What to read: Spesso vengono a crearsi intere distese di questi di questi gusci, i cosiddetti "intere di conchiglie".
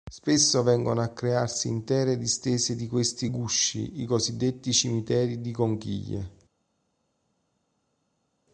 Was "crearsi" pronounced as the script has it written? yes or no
yes